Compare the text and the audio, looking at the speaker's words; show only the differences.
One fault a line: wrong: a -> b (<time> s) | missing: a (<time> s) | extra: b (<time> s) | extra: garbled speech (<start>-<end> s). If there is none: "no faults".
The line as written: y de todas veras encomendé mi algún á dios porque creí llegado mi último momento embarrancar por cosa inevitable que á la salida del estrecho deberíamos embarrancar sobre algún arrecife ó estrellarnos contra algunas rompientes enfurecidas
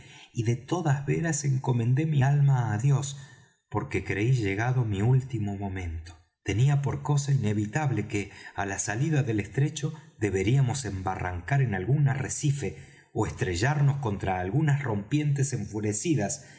wrong: algún -> alma (2.2 s)
wrong: embarrancar -> tenía (6.4 s)
wrong: sobre -> en (11.6 s)